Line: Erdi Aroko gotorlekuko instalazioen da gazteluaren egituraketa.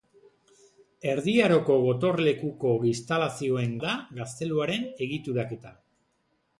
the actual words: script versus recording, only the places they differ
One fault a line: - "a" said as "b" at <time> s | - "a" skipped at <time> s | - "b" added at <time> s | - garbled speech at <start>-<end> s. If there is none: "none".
none